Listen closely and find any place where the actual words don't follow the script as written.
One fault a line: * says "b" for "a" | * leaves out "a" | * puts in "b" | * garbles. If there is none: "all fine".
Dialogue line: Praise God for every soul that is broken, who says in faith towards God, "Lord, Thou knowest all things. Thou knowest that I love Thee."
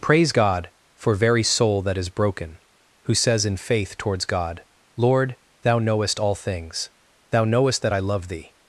* says "very" for "every"